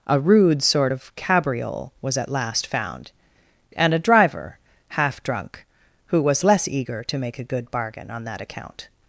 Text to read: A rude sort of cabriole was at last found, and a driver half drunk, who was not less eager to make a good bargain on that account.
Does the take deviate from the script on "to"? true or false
false